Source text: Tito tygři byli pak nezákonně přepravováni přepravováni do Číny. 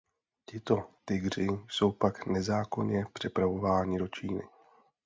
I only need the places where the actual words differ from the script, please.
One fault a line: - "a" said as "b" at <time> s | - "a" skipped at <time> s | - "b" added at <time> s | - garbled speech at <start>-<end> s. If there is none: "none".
- "byli" said as "jsou" at 1.7 s
- "přepravováni" skipped at 4.0 s